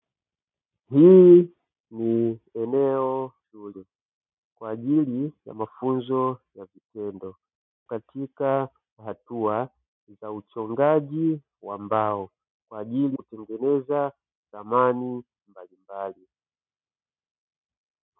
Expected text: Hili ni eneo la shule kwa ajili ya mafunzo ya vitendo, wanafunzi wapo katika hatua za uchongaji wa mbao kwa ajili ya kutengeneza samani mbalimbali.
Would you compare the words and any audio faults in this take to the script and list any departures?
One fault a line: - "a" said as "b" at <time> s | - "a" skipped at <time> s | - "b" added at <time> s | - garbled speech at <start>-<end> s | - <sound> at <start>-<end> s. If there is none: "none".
- "la" skipped at 3.3 s
- "wanafunzi wapo" skipped at 7.4 s
- "ya" skipped at 13.2 s